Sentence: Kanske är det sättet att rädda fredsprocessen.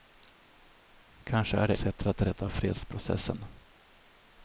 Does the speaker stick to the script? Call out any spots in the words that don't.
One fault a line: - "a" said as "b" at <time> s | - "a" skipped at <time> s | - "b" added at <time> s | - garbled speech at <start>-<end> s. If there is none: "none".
none